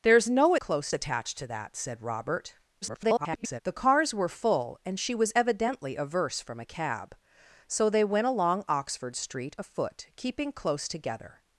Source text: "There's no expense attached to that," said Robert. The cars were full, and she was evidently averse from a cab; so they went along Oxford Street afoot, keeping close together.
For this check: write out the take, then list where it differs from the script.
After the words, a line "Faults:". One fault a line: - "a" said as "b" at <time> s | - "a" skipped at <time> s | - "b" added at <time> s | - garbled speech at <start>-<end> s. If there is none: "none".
"There's no close attached to that," said Robert. [garbled] The cars were full, and she was evidently averse from a cab; so they went along Oxford Street afoot, keeping close together.
Faults:
- "expense" said as "close" at 0.6 s
- garbled speech at 2.8-3.6 s